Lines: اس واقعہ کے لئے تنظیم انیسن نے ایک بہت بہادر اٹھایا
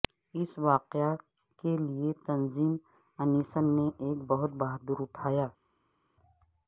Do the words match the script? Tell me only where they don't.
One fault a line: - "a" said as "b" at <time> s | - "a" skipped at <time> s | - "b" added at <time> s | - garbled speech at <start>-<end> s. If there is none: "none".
none